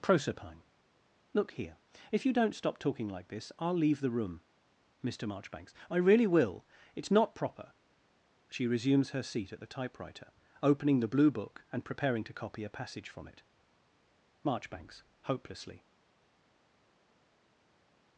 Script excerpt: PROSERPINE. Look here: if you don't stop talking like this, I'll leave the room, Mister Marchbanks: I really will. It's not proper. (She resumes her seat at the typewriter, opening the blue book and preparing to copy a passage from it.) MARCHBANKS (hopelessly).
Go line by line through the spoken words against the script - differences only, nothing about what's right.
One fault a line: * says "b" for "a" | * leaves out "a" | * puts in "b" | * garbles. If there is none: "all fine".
all fine